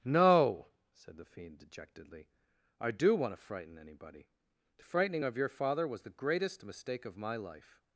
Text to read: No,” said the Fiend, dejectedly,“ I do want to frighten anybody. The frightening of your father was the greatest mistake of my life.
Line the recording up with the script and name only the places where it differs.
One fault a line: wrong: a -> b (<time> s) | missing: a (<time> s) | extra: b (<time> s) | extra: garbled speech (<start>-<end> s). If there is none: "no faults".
no faults